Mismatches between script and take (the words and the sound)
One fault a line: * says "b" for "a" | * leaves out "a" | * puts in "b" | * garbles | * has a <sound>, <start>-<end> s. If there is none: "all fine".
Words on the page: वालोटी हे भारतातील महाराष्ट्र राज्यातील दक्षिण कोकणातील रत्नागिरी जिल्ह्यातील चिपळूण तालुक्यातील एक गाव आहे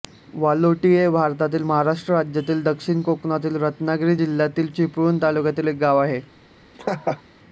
* has a laugh, 6.7-7.2 s